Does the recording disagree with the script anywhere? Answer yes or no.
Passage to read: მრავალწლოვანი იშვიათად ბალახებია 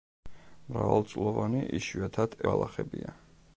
no